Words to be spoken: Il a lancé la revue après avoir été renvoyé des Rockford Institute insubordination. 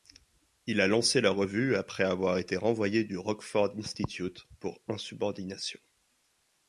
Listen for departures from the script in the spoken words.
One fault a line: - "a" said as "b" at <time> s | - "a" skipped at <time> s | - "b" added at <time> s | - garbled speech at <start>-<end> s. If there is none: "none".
- "des" said as "du" at 3.0 s
- "pour" added at 4.6 s